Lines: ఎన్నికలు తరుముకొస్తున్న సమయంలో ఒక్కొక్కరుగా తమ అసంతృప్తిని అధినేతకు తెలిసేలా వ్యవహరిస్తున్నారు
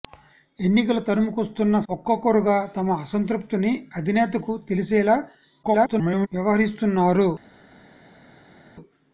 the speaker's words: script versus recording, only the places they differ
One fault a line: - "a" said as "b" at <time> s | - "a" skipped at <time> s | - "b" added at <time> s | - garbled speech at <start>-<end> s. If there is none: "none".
- "సమయంలో" skipped at 1.8 s
- garbled speech at 5.6-6.3 s